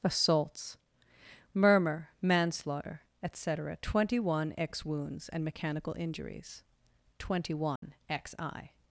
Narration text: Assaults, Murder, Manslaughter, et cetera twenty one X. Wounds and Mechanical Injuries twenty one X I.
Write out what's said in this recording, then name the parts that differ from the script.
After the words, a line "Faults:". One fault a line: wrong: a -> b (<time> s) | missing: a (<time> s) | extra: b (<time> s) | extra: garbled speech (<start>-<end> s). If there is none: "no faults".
Assaults, Murmur, Manslaughter, et cetera twenty one X. Wounds and Mechanical Injuries twenty one X I.
Faults:
wrong: Murder -> Murmur (1.5 s)